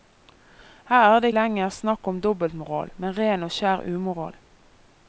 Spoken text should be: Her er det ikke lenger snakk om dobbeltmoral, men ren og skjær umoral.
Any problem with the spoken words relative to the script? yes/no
yes